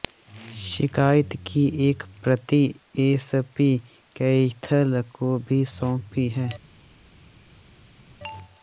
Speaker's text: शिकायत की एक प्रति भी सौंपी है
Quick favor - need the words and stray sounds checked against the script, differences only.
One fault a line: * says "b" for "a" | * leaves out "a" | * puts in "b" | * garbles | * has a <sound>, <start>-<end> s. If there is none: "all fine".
* puts in "एसपी कैथल को"